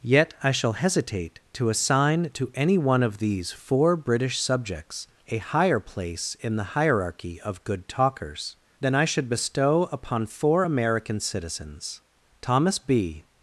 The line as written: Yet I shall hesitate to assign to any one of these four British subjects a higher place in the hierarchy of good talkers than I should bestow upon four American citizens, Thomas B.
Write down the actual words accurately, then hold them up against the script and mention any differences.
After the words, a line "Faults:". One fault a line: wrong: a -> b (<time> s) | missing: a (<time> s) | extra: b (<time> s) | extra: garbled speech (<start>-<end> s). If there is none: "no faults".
Yet I shall hesitate to assign to any one of these four British subjects a higher place in the hierarchy of good talkers than I should bestow upon four American citizens, Thomas B.
Faults:
no faults